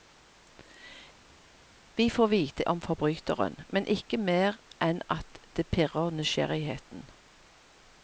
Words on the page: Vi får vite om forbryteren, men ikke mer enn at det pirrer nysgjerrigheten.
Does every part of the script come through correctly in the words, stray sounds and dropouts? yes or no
yes